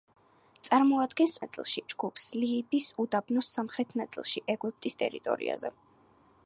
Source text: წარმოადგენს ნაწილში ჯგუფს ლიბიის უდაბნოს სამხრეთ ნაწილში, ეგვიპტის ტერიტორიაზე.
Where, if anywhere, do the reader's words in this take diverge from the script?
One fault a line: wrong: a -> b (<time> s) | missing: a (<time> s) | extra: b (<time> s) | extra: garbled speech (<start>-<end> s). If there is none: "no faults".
no faults